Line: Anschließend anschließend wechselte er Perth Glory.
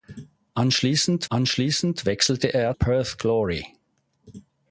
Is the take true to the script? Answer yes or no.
yes